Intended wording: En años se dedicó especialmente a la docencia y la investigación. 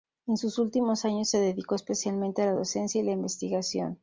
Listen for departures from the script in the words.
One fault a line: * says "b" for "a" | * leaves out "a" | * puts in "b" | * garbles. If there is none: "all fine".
* puts in "sus últimos"